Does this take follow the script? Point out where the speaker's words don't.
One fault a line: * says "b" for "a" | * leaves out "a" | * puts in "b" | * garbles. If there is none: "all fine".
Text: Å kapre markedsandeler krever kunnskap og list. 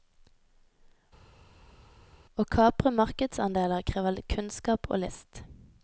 all fine